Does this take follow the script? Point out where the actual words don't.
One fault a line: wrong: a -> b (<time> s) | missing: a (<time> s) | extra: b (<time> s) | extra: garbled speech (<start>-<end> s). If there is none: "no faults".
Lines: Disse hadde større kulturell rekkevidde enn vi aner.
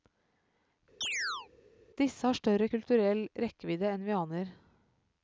wrong: hadde -> har (2.3 s)